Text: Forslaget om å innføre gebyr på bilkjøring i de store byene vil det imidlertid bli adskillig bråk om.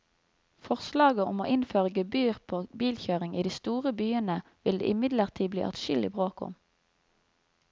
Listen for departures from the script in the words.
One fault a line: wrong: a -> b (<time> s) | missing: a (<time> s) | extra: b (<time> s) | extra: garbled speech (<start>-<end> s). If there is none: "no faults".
no faults